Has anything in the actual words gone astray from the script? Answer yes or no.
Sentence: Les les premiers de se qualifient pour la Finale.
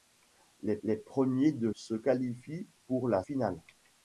no